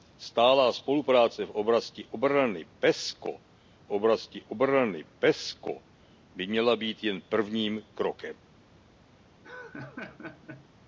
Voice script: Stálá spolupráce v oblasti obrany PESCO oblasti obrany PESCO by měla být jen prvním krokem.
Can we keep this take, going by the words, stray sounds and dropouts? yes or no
no